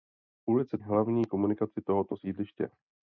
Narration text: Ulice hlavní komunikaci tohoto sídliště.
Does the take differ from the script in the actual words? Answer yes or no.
no